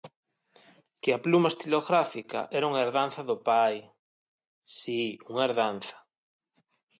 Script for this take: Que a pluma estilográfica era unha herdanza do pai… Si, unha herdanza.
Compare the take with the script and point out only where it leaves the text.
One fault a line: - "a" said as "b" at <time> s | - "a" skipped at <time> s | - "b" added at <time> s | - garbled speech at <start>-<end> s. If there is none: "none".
none